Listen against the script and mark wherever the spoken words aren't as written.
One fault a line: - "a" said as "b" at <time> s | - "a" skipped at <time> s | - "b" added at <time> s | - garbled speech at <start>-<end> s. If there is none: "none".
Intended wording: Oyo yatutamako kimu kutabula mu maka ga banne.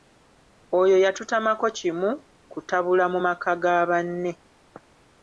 none